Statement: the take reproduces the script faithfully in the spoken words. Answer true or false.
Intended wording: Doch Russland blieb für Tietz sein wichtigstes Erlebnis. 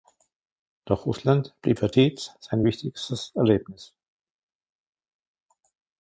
true